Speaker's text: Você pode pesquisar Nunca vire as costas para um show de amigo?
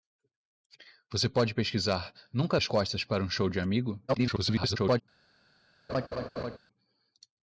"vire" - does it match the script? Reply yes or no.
no